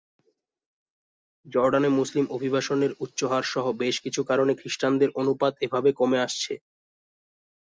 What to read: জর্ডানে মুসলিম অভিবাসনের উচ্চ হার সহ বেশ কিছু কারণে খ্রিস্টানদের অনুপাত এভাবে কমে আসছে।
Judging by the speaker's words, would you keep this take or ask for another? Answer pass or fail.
pass